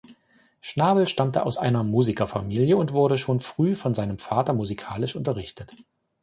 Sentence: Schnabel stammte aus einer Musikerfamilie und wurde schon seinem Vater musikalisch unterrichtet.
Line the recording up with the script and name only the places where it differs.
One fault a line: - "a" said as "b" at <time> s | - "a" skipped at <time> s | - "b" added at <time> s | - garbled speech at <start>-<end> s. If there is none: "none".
- "früh von" added at 3.4 s